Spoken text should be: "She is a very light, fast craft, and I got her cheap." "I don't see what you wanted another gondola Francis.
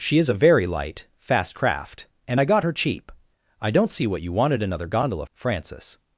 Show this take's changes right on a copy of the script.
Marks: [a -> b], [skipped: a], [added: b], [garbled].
"She is a very light, fast craft, and I got her cheap." "I don't see what you wanted another gondola Francis.